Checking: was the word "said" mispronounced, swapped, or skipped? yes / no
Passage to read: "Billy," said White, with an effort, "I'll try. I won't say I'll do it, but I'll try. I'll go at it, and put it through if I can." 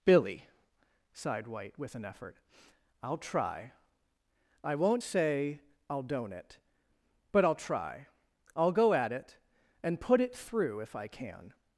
yes